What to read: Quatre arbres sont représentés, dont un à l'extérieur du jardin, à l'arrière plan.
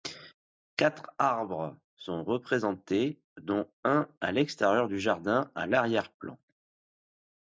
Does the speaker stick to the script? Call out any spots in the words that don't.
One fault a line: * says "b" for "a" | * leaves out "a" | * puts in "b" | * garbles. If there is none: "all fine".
all fine